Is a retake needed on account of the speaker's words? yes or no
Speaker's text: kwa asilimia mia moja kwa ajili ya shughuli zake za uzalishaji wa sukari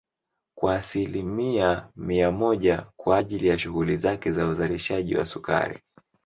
no